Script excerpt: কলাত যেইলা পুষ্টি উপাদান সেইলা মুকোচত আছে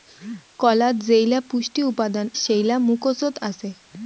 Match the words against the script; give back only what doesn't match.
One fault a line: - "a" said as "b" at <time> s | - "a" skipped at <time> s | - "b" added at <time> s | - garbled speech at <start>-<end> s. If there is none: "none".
none